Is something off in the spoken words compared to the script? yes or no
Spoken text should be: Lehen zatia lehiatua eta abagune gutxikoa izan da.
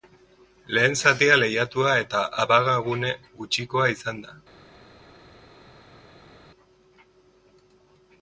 no